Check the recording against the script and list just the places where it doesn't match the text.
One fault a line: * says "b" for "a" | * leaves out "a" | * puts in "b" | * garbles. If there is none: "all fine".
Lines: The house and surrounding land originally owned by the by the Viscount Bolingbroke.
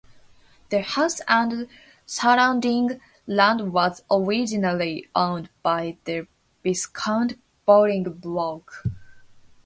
* puts in "was"
* leaves out "by the"